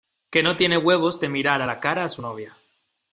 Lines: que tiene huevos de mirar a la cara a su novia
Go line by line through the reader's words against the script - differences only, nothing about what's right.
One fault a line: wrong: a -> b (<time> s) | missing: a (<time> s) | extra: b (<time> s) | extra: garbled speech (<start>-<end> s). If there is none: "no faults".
extra: no (0.4 s)